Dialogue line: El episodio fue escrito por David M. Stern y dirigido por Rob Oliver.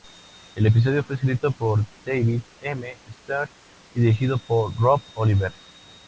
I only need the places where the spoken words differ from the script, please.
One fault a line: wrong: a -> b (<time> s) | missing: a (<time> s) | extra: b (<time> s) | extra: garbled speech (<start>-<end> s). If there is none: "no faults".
no faults